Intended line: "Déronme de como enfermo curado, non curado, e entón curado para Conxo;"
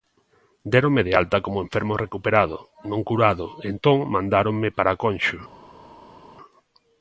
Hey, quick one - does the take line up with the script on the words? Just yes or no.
no